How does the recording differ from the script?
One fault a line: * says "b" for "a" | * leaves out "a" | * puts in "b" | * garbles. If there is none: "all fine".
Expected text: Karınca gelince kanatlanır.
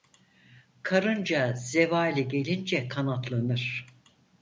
* puts in "zevali"